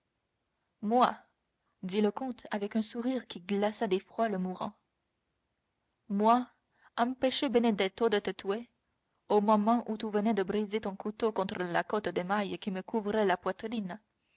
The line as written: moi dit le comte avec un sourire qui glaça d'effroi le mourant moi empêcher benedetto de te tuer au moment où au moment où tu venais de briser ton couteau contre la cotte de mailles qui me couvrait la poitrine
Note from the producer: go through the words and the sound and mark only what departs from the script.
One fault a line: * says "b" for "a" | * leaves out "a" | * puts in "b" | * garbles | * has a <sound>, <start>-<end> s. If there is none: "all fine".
* leaves out "au moment où"